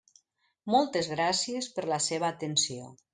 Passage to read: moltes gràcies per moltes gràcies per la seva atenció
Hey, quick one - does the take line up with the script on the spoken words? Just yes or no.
no